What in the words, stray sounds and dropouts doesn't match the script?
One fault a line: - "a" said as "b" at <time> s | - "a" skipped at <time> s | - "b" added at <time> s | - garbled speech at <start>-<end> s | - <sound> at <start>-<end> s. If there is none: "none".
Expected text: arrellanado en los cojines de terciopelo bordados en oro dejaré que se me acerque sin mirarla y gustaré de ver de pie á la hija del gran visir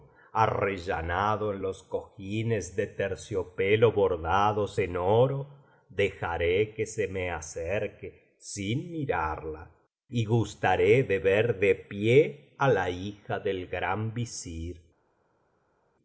none